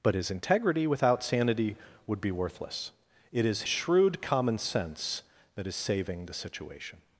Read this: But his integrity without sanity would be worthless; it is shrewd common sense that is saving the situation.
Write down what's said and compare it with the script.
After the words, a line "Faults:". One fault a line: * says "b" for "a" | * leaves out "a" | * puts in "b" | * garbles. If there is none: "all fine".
But his integrity without sanity would be worthless; it is shrewd common sense that is saving the situation.
Faults:
all fine